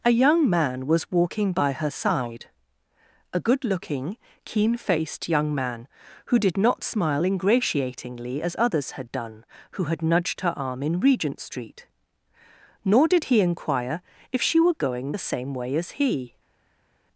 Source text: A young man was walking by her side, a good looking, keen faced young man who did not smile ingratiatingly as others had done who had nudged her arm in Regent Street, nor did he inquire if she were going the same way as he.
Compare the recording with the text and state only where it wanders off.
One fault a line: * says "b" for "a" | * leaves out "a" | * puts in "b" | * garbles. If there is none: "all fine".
all fine